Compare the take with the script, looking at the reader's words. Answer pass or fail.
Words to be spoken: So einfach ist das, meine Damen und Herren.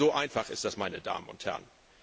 pass